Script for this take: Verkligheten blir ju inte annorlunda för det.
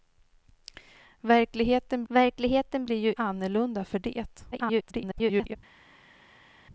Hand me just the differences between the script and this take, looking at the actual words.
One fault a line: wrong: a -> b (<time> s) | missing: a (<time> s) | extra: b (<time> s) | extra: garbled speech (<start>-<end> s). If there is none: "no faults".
extra: verkligheten (2.1 s)
missing: inte (3.1 s)
extra: garbled speech (4.5-5.6 s)